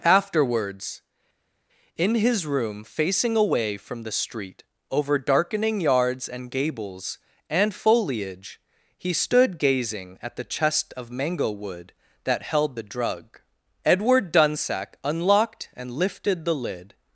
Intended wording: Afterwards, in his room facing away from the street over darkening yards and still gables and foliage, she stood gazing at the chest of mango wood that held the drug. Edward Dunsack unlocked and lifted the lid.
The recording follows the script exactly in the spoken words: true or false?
false